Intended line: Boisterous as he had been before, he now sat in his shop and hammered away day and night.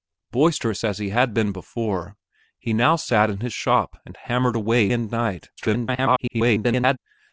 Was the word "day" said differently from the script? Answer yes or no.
yes